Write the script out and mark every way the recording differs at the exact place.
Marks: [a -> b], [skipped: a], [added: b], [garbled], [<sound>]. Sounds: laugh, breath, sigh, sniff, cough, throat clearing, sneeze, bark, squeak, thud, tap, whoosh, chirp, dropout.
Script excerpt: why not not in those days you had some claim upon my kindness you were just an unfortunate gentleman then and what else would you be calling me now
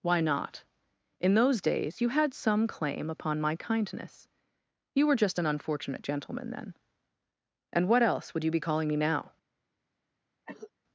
why not [skipped: not] in those days you had some claim upon my kindness you were just an unfortunate gentleman then and what else would you be calling me now [cough]